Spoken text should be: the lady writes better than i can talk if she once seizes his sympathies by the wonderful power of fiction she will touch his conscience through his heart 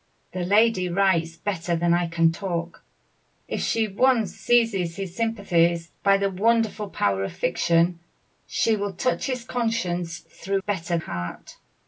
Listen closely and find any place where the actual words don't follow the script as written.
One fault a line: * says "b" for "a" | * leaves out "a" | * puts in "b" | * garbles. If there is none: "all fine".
* says "better" for "his"